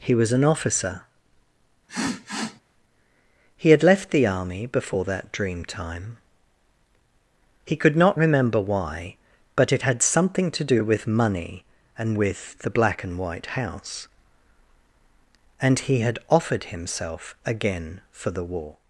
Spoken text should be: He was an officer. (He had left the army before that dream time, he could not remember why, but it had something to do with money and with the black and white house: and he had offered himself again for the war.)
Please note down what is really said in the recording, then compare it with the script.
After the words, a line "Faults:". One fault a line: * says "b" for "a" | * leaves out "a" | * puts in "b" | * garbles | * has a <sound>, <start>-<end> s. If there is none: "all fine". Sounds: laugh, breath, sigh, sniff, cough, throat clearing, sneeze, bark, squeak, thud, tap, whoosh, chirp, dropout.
He was an officer. (He had left the army before that dream time, he could not remember why, but it had something to do with money and with the black and white house: and he had offered himself again for the war.)
Faults:
* has a sniff, 1.9-2.6 s